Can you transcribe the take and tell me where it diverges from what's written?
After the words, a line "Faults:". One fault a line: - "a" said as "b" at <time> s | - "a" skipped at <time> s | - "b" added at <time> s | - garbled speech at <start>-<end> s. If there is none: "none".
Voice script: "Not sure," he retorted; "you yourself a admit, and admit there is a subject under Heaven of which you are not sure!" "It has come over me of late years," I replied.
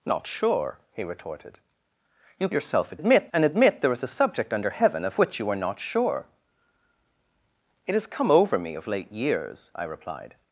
"Not sure," he retorted; "you yourself a admit, and admit there is a subject under Heaven of which you are not sure!" "It has come over me of late years," I replied.
Faults:
none